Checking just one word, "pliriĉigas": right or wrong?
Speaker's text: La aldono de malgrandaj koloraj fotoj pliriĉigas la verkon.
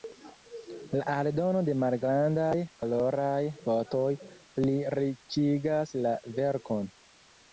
right